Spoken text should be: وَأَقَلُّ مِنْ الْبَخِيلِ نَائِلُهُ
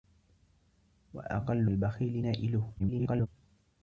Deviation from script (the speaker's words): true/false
true